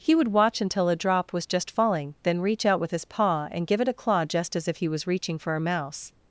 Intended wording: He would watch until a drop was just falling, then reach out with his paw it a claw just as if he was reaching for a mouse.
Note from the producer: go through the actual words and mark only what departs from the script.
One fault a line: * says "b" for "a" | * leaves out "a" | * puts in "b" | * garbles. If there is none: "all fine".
* puts in "and give"